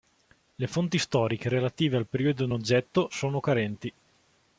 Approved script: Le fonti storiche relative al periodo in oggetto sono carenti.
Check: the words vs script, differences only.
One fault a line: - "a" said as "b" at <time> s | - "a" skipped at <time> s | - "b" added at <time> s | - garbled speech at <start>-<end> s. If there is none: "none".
none